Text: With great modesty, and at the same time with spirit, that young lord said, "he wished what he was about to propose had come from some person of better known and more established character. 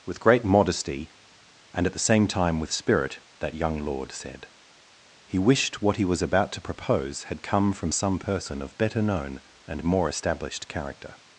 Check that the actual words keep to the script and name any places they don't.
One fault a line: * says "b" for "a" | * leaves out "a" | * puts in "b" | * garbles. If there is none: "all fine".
all fine